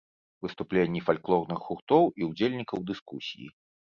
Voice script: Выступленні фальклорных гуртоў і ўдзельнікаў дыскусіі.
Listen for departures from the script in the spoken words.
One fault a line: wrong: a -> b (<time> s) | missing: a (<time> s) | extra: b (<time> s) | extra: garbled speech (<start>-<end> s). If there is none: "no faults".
no faults